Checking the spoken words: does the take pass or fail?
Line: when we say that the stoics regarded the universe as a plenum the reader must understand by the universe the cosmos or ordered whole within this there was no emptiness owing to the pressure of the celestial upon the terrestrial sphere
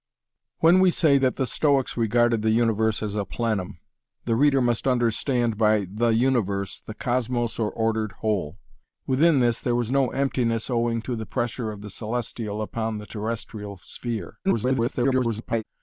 fail